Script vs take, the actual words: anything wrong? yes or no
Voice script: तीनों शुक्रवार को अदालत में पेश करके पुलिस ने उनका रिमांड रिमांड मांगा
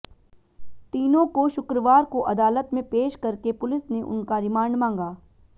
yes